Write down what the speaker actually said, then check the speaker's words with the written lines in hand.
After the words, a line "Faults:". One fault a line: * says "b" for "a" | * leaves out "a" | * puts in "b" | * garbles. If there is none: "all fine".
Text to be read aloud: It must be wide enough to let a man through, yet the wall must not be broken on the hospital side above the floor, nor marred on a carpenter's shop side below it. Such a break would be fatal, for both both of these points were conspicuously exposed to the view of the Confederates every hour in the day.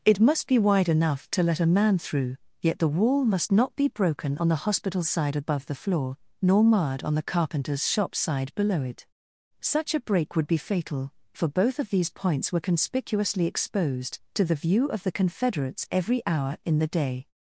It must be wide enough to let a man through, yet the wall must not be broken on the hospital side above the floor, nor marred on the carpenter's shop side below it. Such a break would be fatal, for both of these points were conspicuously exposed to the view of the Confederates every hour in the day.
Faults:
* says "the" for "a"
* leaves out "both"